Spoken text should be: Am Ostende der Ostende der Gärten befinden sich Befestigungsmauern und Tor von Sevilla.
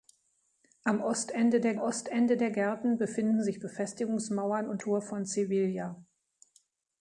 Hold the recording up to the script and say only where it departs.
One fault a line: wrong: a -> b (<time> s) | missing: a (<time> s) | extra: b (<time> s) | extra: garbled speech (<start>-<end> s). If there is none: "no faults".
no faults